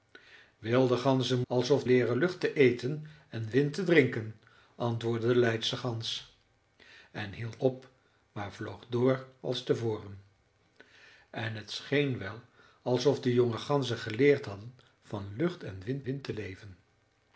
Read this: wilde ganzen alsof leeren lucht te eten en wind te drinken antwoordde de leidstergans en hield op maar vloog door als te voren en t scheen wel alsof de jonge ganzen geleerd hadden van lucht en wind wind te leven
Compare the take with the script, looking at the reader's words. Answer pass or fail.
pass